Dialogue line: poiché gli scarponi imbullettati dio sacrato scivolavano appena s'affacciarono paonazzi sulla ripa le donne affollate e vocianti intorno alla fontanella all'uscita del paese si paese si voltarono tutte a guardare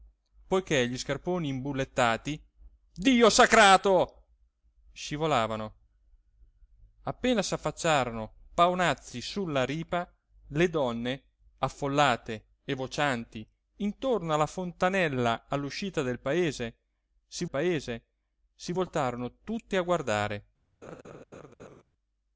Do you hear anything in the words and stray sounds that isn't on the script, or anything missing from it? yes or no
yes